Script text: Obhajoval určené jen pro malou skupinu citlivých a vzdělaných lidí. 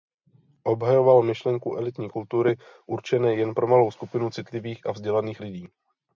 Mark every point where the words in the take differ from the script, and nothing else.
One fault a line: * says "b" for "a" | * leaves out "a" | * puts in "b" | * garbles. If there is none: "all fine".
* puts in "myšlenku elitní kultury"